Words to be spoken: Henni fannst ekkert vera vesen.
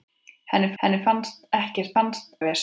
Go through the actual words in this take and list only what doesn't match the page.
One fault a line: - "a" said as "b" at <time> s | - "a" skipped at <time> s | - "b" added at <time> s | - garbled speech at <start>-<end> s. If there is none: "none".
- "henni" added at 0.8 s
- "vera" said as "fannst" at 1.9 s